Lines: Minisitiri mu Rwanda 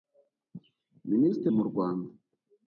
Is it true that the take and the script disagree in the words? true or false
false